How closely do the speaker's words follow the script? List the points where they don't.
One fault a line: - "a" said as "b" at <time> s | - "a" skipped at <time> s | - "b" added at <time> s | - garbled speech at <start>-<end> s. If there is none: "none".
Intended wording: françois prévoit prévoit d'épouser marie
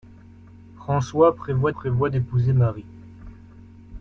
none